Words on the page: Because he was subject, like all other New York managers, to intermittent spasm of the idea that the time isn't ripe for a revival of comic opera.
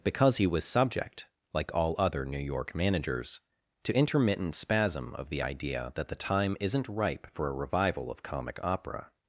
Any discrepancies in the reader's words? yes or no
no